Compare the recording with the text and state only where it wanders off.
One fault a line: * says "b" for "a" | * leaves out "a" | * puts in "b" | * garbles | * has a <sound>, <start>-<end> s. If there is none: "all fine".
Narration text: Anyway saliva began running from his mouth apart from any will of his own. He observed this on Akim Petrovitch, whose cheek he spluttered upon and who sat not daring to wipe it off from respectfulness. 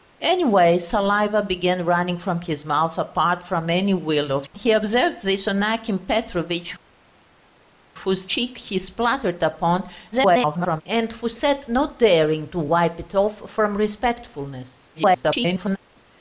* leaves out "his own"
* garbles
* garbles